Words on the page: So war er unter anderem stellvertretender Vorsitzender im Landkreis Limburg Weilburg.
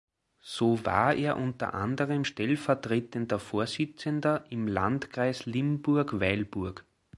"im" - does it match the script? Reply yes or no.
yes